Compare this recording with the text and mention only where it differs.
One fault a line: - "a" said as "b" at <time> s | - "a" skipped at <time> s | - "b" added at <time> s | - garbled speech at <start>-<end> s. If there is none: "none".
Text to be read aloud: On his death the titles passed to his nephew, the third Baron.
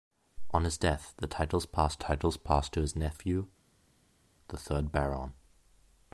- "titles passed" added at 2.0 s